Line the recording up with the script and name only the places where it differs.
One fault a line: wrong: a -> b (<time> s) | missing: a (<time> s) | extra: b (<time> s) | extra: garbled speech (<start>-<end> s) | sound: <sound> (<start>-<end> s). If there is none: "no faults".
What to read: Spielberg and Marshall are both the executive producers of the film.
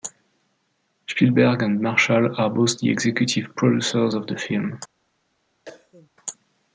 sound: cough (5.7-6.1 s)